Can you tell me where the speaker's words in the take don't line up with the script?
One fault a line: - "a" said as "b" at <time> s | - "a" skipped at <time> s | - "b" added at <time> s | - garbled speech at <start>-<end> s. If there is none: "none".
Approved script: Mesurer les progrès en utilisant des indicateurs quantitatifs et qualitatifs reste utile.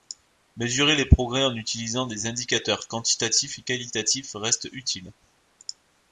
none